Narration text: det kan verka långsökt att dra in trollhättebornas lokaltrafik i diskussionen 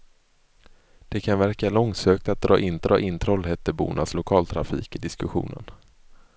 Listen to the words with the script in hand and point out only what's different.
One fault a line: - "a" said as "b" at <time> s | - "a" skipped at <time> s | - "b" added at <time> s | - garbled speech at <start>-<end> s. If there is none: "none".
- "dra in" added at 2.8 s